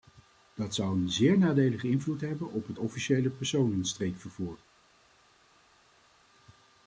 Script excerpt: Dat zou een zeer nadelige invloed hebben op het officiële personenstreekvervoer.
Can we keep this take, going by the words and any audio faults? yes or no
yes